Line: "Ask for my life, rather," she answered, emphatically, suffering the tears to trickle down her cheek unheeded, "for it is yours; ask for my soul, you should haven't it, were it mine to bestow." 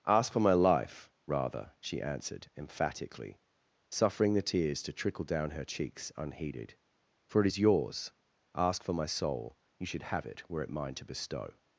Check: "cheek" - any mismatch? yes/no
yes